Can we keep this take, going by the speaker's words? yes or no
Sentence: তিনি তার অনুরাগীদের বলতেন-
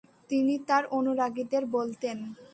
yes